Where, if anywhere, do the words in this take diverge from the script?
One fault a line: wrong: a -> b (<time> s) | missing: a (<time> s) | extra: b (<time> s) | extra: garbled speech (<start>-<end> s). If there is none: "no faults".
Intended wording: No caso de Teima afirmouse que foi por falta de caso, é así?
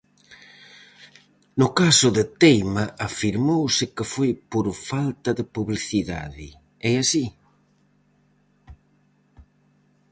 wrong: caso -> publicidade (5.5 s)